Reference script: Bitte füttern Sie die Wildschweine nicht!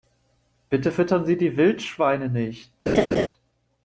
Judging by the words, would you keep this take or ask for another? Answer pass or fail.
pass